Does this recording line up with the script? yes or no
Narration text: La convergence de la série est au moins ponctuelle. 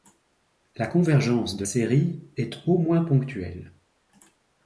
no